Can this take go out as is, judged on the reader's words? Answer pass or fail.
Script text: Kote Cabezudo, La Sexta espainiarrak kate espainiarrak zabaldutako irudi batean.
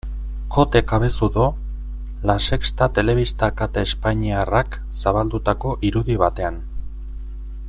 fail